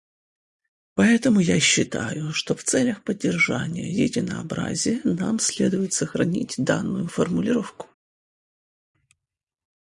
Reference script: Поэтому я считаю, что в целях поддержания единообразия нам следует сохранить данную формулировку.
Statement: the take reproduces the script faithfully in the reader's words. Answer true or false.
true